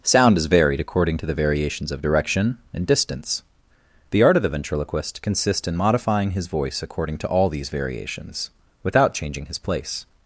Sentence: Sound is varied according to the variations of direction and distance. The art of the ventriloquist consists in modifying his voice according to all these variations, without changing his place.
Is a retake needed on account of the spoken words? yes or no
no